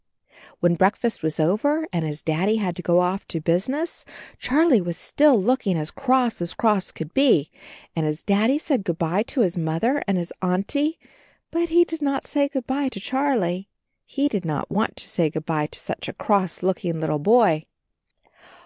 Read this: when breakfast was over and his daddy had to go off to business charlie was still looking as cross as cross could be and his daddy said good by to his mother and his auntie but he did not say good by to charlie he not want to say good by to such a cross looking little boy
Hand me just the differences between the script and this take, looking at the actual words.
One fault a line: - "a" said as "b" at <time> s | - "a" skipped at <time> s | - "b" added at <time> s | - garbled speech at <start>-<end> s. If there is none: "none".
- "did" added at 14.3 s